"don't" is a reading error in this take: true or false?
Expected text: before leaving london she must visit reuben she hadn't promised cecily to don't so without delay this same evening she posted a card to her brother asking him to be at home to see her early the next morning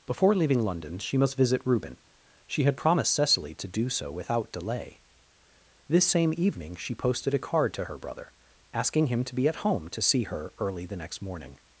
true